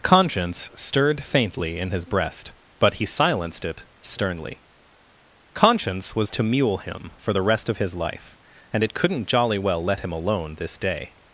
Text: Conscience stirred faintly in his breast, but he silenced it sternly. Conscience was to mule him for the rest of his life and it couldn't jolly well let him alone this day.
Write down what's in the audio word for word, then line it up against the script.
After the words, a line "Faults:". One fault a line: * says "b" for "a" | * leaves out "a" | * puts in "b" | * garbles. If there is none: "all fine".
Conscience stirred faintly in his breast, but he silenced it sternly. Conscience was to mule him for the rest of his life and it couldn't jolly well let him alone this day.
Faults:
all fine